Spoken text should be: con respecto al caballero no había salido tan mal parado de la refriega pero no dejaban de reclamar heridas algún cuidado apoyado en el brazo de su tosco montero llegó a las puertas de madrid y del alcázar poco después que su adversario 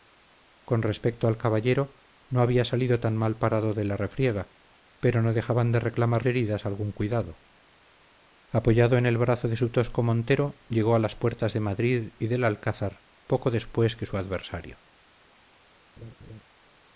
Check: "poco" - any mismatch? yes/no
no